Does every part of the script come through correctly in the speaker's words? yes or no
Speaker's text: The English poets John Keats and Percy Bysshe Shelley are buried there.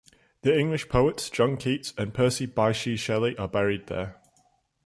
yes